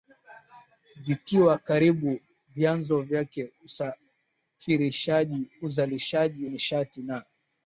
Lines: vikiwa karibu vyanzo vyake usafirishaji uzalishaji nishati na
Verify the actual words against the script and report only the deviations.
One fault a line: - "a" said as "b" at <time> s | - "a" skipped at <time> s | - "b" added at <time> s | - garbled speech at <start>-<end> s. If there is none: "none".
none